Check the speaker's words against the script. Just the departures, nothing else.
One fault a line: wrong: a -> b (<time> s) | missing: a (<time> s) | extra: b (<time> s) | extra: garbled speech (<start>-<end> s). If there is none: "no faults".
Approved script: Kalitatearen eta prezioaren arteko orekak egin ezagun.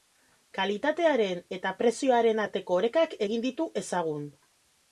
extra: ditu (3.5 s)